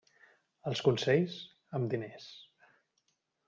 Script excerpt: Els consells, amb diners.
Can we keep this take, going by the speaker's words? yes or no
yes